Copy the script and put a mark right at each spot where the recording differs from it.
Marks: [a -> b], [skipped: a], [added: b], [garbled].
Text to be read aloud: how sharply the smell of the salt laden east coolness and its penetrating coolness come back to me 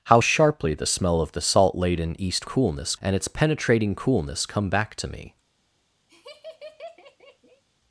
how sharply the smell of the salt laden east coolness and its penetrating coolness come back to me